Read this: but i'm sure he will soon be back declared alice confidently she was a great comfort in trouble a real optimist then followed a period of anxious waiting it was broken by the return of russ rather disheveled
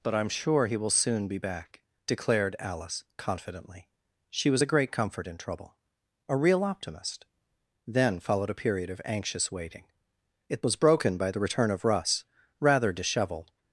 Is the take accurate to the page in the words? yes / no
yes